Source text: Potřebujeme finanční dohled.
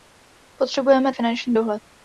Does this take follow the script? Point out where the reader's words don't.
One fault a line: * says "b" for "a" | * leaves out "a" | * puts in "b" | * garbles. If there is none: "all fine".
all fine